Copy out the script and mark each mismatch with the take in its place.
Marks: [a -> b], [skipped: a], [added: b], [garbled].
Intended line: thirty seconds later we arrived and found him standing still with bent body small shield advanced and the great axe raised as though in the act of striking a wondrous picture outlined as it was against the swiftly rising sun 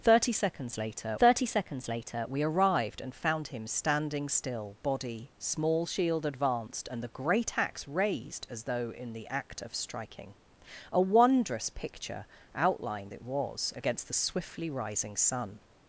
thirty seconds later [added: thirty seconds later] we arrived and found him standing still [skipped: with bent] body small shield advanced and the great axe raised as though in the act of striking a wondrous picture outlined [skipped: as] it was against the swiftly rising sun